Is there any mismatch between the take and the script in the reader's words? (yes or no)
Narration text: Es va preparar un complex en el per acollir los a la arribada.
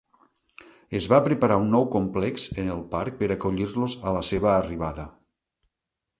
yes